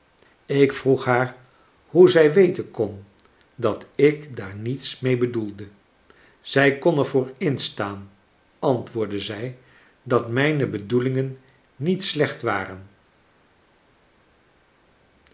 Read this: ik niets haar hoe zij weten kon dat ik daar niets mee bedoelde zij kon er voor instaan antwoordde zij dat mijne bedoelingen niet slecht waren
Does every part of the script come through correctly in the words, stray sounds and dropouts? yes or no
no